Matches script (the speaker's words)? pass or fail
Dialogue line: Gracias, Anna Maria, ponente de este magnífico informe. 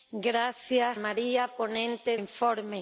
fail